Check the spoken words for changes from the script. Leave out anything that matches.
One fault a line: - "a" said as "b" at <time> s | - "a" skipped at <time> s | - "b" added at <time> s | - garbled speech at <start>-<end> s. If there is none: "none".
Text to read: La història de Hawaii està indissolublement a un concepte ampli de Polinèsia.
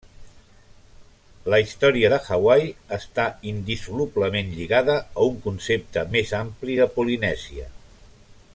- "lligada" added at 4.6 s
- "més" added at 6.2 s